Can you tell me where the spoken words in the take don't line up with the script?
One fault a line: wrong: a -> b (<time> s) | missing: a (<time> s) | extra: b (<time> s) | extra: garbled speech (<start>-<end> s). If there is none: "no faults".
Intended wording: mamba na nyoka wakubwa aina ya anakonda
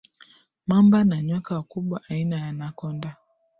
no faults